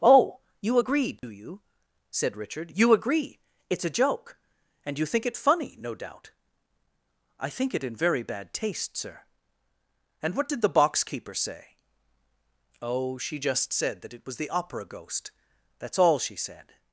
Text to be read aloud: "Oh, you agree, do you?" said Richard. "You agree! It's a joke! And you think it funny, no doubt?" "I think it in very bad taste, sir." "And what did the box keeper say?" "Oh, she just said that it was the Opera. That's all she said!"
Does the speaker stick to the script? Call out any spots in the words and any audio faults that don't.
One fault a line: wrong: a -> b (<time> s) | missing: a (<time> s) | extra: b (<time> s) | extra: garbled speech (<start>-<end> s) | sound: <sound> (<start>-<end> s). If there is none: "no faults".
sound: dropout (1.2-1.2 s)
extra: ghost (14.8 s)